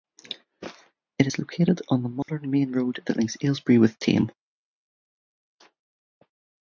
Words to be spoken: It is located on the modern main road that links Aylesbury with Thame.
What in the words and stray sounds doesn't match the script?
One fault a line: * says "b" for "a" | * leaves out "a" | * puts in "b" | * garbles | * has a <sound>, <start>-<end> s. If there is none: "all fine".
* has a dropout, 2.2-2.3 s